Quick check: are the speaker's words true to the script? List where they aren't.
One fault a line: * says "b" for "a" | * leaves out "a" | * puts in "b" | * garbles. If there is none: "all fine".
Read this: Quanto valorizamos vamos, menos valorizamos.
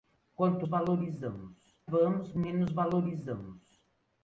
all fine